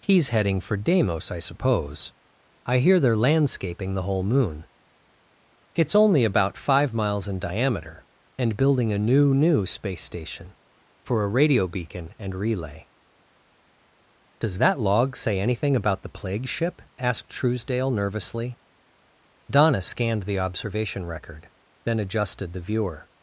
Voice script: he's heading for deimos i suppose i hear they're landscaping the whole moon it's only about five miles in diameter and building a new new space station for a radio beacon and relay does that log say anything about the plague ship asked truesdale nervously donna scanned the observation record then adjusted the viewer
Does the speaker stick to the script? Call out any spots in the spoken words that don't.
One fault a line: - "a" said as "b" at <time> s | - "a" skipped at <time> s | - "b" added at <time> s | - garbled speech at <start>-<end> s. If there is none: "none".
none